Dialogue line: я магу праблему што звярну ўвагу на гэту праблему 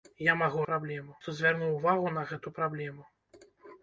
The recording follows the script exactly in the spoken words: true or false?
true